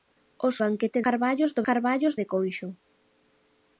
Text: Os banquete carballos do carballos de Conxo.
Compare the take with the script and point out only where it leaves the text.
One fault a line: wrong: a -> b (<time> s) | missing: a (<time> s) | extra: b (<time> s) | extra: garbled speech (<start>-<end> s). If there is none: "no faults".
no faults